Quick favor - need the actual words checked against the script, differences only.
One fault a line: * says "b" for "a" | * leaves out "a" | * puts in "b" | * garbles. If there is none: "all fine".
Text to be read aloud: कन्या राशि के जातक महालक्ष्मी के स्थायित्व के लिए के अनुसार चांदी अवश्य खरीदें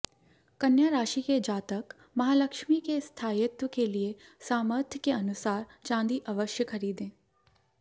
* puts in "सामर्थ्य"